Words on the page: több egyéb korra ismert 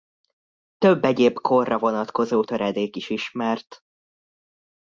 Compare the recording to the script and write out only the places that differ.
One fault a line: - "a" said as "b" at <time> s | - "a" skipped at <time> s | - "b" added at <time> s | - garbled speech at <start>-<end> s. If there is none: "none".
- "vonatkozó töredék is" added at 1.8 s